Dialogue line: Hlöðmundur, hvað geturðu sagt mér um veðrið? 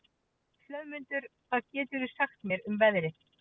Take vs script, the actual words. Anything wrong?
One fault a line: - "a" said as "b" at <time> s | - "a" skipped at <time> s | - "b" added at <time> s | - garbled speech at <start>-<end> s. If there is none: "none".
none